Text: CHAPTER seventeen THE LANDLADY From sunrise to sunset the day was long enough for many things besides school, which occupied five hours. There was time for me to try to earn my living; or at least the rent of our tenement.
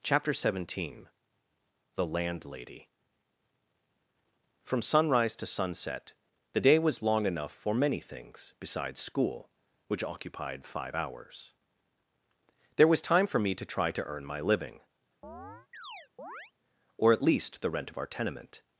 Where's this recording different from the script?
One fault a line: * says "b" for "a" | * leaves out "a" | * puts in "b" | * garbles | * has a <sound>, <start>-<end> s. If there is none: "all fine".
* has a chirp, 15.2-16.5 s